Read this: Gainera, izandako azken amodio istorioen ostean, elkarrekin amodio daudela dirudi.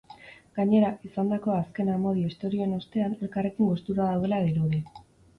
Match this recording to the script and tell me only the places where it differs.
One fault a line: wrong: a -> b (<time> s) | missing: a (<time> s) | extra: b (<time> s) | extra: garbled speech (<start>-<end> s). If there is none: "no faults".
wrong: amodio -> gustura (3.7 s)